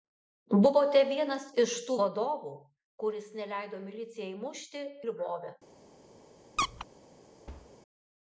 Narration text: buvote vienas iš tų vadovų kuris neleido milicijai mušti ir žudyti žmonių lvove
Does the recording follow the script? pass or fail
fail